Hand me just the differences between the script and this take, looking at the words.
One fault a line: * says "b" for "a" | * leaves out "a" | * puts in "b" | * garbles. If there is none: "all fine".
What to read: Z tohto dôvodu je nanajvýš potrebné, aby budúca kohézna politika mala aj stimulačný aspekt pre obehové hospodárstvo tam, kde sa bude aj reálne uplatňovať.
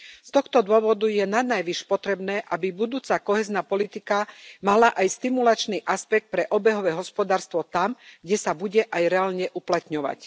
all fine